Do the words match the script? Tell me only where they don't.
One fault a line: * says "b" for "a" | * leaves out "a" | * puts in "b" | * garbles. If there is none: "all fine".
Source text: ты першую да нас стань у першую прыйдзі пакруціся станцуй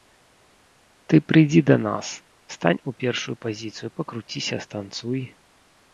* says "прыйдзі" for "першую"
* says "пазіцыю" for "прыйдзі"